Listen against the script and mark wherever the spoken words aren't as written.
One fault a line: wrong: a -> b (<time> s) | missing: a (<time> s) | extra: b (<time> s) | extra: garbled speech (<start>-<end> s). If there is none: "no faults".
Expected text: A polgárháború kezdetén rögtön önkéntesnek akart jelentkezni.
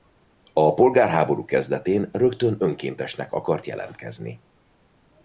no faults